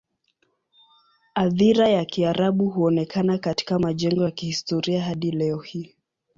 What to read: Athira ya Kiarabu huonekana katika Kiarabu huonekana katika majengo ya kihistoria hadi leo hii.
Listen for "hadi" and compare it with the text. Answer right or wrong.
right